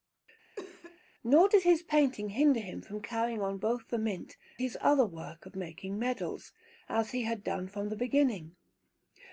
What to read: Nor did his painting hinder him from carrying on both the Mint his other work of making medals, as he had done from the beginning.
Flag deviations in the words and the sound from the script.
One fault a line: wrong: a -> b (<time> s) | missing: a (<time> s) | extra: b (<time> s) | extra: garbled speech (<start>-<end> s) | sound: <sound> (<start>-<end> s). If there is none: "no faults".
sound: cough (0.6-1.0 s)